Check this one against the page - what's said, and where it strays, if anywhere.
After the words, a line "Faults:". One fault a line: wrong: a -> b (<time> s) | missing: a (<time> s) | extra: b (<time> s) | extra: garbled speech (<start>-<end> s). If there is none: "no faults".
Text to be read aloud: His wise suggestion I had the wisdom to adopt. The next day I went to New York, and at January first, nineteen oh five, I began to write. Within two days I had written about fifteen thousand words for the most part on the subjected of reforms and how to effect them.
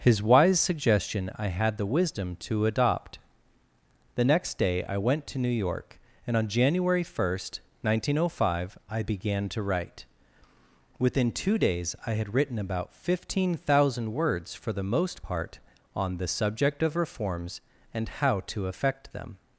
His wise suggestion I had the wisdom to adopt. The next day I went to New York, and on January first, nineteen oh five, I began to write. Within two days I had written about fifteen thousand words for the most part on the subject of reforms and how to effect them.
Faults:
wrong: at -> on (6.3 s)
wrong: subjected -> subject (16.3 s)